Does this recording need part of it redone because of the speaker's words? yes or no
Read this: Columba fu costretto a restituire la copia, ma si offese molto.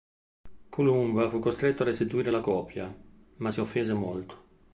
no